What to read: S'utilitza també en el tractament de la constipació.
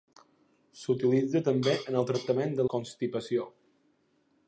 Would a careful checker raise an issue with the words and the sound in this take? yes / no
yes